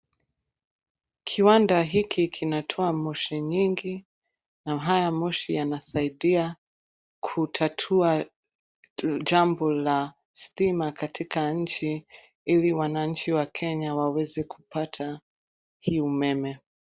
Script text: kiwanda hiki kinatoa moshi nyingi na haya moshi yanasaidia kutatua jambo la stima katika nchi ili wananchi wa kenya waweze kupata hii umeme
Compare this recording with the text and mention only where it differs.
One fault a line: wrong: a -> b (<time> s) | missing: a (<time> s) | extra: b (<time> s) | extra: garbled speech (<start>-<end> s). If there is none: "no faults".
no faults